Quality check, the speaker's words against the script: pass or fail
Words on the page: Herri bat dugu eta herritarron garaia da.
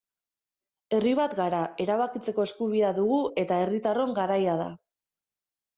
fail